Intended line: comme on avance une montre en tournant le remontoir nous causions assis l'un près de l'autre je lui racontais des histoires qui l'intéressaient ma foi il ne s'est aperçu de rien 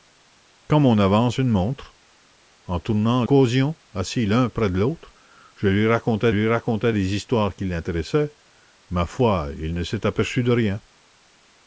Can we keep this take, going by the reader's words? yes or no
no